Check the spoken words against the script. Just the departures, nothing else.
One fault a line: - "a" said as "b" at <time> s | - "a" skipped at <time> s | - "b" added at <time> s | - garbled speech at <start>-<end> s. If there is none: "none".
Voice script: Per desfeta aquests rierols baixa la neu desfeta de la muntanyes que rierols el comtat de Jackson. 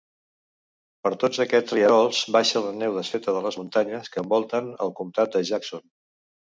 - "desfeta" said as "tots" at 1.2 s
- "la" said as "les" at 3.5 s
- "rierols" said as "envolten" at 4.3 s